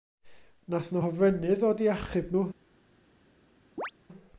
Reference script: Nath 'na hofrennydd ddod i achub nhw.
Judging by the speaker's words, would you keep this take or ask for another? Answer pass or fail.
pass